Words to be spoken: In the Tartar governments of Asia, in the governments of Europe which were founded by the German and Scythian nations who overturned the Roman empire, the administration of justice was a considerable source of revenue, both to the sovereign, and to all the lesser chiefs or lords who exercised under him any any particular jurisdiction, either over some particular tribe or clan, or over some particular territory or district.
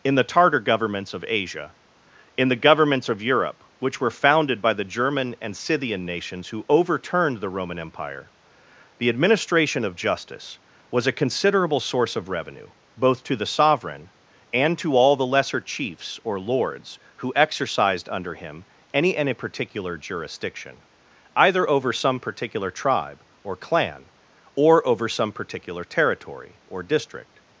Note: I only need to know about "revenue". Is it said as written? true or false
true